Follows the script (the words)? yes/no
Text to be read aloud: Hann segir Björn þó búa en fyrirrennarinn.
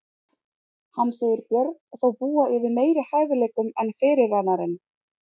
no